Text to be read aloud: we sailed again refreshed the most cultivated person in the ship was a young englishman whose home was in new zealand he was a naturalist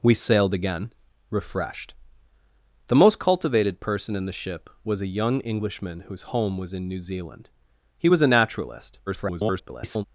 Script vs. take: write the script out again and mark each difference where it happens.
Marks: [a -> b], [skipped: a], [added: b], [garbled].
we sailed again refreshed the most cultivated person in the ship was a young englishman whose home was in new zealand he was a naturalist [garbled]